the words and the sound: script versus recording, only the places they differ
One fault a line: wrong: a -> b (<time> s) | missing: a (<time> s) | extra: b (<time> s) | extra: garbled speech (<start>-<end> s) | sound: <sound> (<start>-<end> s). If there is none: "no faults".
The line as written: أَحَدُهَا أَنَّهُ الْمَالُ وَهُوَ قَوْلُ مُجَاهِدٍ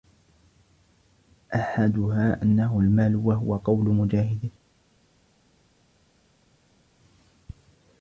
no faults